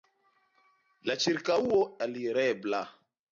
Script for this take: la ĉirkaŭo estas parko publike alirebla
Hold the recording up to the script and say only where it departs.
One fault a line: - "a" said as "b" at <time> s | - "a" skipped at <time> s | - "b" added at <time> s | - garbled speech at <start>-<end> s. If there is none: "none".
- "estas parko publike" skipped at 1.8 s